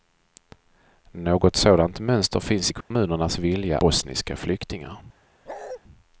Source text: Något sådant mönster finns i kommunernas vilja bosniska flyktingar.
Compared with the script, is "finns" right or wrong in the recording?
right